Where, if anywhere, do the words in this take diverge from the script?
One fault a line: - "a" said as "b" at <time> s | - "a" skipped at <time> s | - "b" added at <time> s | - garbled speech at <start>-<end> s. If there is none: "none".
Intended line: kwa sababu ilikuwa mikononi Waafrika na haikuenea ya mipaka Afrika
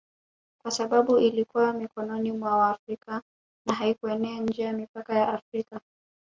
- "mwa" added at 2.3 s
- "nje" added at 4.4 s
- "ya" added at 5.1 s